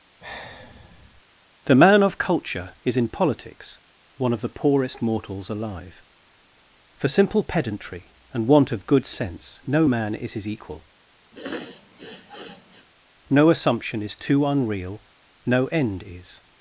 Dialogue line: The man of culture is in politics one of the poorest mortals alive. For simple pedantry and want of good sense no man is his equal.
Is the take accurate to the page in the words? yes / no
no